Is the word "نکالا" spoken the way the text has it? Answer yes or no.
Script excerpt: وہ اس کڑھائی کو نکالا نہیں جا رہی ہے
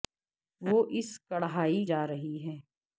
no